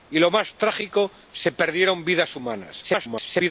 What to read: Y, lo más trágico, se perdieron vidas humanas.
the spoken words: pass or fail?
fail